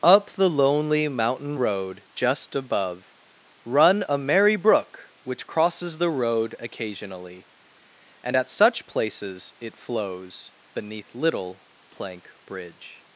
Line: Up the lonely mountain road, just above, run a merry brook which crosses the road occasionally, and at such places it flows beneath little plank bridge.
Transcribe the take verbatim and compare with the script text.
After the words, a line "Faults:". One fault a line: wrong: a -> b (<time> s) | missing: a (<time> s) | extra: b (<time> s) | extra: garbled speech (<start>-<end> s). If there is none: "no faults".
Up the lonely mountain road, just above, run a merry brook which crosses the road occasionally, and at such places it flows beneath little plank bridge.
Faults:
no faults